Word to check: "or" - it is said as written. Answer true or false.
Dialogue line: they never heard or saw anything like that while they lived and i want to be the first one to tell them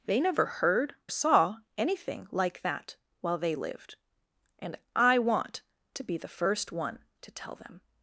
false